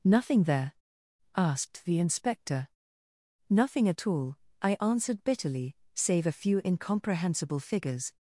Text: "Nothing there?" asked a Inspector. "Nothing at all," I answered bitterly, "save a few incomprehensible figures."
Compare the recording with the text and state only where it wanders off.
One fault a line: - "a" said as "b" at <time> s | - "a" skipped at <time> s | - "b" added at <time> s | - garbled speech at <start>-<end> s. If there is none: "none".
- "a" said as "the" at 1.9 s